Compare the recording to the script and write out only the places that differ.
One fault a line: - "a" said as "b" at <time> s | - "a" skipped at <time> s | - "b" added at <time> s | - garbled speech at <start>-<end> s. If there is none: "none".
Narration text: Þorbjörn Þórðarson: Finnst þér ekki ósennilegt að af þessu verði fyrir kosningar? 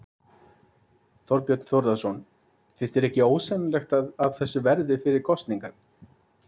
none